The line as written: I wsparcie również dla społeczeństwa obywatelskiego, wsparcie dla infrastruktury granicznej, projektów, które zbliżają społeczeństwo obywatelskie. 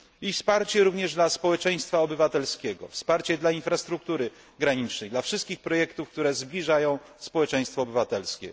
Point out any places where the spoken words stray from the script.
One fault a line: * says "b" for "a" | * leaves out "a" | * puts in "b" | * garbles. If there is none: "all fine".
* puts in "dla wszystkich"